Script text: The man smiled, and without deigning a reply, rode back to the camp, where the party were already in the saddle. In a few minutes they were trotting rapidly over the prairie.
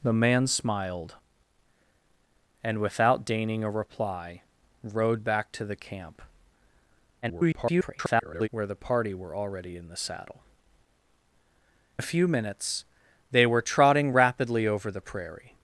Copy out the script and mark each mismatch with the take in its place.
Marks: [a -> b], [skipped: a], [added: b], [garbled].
The man smiled, and without deigning a reply, rode back to the camp, [garbled] where the party were already in the saddle. [skipped: In] a few minutes they were trotting rapidly over the prairie.